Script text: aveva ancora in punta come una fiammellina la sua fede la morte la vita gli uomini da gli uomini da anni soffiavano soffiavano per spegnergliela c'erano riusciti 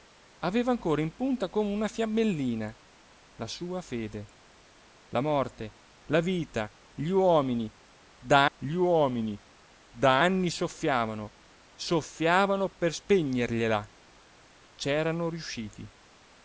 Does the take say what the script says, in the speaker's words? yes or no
yes